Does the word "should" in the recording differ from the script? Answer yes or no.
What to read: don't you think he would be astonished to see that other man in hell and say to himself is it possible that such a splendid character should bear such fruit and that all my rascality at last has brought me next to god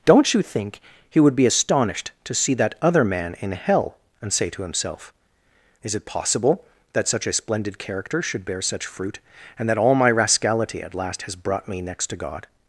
no